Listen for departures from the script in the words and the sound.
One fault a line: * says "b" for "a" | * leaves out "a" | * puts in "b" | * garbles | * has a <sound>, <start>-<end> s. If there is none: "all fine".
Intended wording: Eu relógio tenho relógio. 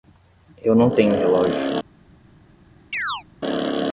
* says "não" for "relógio"
* has a chirp, 2.9-3.2 s